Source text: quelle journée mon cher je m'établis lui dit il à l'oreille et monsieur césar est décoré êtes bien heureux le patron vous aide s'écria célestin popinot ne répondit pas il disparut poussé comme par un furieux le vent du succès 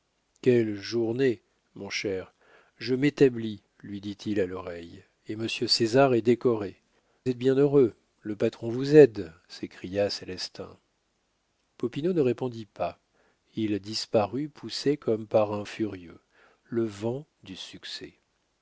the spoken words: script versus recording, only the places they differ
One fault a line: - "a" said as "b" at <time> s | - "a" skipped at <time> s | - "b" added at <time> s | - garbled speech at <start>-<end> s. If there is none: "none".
none